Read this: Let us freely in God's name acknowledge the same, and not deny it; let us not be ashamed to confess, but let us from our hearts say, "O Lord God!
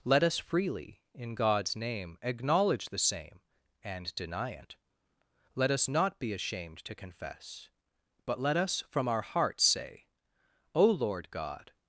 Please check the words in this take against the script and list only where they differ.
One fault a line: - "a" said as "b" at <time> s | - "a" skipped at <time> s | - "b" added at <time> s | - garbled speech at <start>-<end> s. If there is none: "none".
- "not" skipped at 4.1 s